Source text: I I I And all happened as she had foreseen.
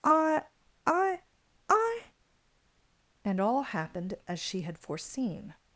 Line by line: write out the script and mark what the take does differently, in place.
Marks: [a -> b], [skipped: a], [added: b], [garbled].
I I I And all happened as she had foreseen.